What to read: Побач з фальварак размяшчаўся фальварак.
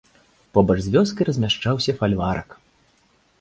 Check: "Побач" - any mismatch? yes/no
no